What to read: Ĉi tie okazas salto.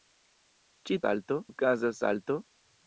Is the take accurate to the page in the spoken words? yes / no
no